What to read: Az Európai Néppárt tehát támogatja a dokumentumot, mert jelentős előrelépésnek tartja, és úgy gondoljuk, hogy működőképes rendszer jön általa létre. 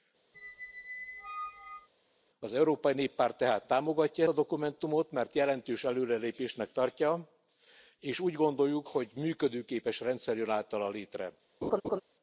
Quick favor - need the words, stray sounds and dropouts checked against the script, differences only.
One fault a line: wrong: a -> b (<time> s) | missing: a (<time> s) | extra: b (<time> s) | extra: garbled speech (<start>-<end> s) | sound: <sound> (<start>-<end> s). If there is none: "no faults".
sound: squeak (0.3-1.9 s)
sound: laugh (11.6-12.0 s)